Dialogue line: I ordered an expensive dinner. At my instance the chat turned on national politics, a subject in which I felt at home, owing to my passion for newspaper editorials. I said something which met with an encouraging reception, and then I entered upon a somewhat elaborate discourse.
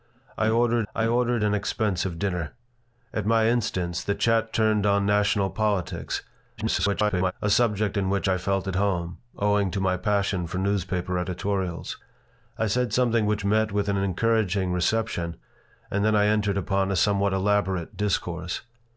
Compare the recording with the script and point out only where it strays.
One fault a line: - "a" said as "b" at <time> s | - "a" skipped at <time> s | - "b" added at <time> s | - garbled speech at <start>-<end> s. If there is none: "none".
- "I ordered" added at 0.9 s
- garbled speech at 6.6-7.3 s